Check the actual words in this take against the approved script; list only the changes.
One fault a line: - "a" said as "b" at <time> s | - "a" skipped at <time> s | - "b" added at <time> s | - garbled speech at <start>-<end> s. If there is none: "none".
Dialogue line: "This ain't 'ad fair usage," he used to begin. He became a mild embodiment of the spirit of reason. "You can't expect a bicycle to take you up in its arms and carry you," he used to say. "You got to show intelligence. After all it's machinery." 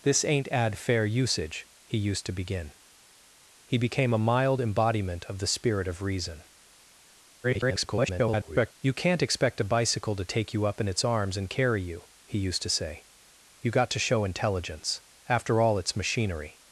- garbled speech at 7.4-8.7 s